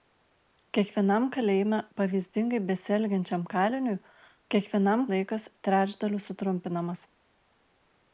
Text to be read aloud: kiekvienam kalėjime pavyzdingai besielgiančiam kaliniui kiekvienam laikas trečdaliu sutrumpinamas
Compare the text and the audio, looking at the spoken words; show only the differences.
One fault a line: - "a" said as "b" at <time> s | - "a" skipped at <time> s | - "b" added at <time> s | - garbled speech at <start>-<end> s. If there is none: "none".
none